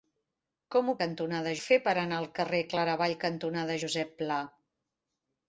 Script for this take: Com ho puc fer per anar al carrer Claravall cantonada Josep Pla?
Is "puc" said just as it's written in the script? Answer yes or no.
no